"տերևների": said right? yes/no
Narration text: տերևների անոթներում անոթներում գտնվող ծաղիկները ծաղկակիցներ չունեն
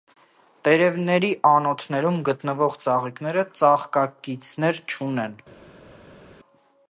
yes